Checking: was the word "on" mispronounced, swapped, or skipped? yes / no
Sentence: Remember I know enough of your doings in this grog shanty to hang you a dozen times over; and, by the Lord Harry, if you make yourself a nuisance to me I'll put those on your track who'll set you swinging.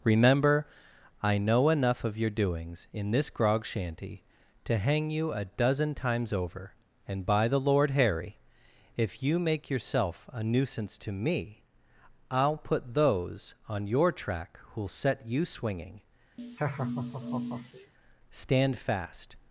no